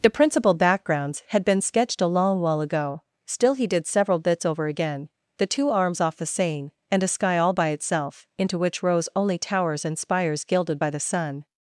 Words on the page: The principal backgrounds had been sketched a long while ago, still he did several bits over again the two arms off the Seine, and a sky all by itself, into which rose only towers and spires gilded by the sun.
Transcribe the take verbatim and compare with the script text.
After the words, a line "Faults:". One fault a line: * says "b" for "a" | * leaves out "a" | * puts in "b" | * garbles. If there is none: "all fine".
The principal backgrounds had been sketched a long while ago, still he did several bits over again the two arms off the Seine, and a sky all by itself, into which rose only towers and spires gilded by the sun.
Faults:
all fine